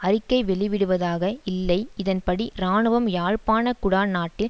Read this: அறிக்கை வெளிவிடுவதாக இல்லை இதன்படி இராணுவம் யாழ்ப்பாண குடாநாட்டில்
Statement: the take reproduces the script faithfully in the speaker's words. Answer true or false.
true